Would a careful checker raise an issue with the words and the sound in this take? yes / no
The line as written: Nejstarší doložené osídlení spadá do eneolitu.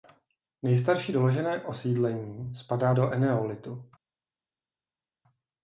no